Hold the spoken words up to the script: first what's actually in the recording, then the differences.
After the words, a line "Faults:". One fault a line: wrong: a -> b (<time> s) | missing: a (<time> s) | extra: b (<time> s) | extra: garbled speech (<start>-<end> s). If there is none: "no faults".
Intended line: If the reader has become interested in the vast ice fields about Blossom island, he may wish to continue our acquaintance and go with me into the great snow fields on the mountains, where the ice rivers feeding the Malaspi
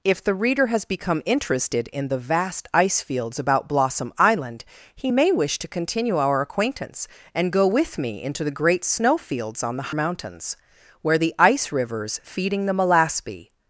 If the reader has become interested in the vast ice fields about Blossom island, he may wish to continue our acquaintance and go with me into the great snow fields on the mountains, where the ice rivers feeding the Malaspi
Faults:
no faults